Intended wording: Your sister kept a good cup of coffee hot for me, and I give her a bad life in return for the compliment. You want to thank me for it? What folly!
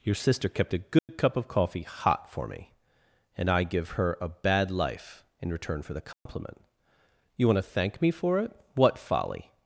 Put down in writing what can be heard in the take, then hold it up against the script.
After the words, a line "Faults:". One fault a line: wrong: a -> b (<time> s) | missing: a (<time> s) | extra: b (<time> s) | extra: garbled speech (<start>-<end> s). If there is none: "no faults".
Your sister kept a good cup of coffee hot for me, and I give her a bad life in return for the compliment. You want to thank me for it? What folly!
Faults:
no faults